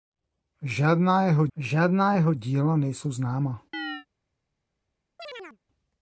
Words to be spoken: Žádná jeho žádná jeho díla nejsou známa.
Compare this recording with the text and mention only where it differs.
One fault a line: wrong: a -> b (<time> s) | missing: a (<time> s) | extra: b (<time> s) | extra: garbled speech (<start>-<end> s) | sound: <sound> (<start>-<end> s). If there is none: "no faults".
sound: chirp (3.7-4.1 s)
sound: chirp (5.2-5.6 s)